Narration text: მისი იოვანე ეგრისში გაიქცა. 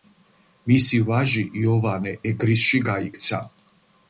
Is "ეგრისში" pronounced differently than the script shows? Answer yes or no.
no